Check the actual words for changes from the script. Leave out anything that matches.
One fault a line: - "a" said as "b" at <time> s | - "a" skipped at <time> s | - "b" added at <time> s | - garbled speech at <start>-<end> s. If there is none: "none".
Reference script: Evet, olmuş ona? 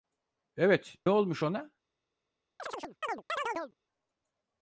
none